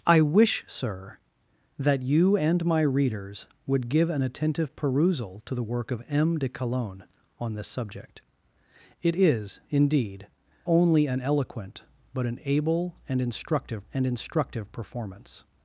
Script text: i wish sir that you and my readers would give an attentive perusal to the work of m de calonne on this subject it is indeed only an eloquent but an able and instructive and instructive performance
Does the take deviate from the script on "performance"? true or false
false